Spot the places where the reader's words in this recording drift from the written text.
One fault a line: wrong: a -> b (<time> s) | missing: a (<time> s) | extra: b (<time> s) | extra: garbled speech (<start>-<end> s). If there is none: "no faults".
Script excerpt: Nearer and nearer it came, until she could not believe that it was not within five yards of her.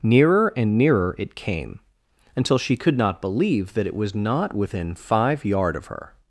wrong: yards -> yard (5.5 s)